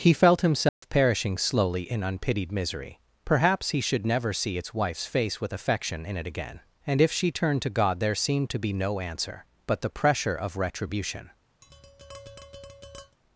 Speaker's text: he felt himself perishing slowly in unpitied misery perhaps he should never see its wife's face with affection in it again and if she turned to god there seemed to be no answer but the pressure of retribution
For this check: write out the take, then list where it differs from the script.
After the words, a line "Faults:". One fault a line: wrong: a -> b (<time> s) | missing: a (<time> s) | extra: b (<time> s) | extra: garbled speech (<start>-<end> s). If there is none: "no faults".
he felt himself perishing slowly in unpitied misery perhaps he should never see its wife's face with affection in it again and if she turned to god there seemed to be no answer but the pressure of retribution
Faults:
no faults